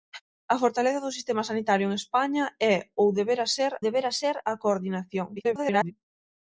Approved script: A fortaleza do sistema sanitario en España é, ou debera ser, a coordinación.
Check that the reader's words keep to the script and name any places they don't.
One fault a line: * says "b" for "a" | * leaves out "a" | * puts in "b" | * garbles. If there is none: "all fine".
* puts in "debera ser"
* garbles